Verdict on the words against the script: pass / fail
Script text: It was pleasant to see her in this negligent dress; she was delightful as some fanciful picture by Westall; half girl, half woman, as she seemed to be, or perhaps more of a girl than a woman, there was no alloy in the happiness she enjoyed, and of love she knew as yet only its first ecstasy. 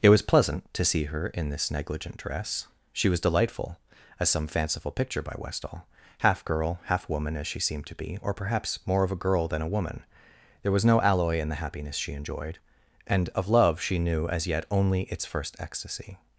pass